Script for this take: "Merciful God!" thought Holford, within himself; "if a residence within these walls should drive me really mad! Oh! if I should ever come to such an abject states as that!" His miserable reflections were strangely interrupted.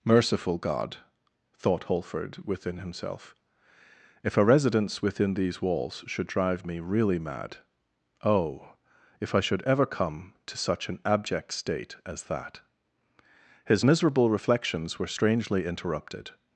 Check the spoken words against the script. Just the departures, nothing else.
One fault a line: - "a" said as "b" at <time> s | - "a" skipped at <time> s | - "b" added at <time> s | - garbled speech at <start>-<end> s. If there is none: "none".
- "states" said as "state" at 11.5 s